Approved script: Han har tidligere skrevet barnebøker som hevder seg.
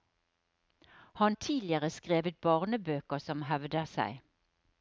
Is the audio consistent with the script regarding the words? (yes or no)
no